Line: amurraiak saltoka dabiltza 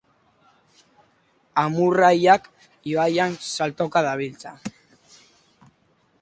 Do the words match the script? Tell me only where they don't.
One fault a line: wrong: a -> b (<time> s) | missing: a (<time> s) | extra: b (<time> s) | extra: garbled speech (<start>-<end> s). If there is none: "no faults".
extra: ibaian (2.9 s)